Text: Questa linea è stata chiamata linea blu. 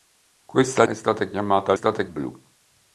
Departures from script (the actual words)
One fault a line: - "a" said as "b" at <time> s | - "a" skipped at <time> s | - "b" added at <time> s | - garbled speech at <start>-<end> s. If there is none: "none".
- "linea" skipped at 0.8 s
- "linea" said as "stata" at 1.7 s